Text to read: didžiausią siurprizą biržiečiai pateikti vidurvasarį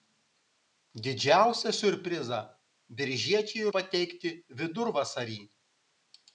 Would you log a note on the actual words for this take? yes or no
no